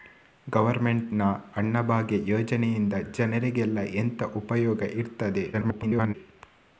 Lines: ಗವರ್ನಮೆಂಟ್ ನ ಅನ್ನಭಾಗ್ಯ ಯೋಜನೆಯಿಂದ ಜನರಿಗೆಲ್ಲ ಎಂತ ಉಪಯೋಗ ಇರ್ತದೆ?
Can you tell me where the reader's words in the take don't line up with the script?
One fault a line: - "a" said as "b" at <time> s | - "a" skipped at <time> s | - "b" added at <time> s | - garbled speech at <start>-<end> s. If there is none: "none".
- garbled speech at 5.5-6.1 s